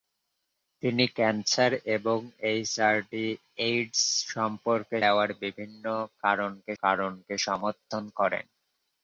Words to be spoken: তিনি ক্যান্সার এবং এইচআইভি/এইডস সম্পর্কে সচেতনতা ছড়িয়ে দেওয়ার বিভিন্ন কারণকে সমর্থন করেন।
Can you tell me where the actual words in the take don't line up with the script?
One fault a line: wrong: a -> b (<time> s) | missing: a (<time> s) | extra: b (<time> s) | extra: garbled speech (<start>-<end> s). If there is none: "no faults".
missing: সচেতনতা ছড়িয়ে (5.0 s)
extra: কারণকে (6.8 s)